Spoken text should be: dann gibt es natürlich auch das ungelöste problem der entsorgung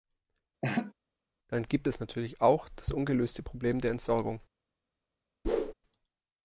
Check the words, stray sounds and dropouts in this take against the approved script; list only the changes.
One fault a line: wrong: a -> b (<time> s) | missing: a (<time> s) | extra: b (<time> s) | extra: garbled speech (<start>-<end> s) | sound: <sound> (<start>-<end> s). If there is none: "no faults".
sound: laugh (0.6-0.9 s)
sound: whoosh (5.4-5.7 s)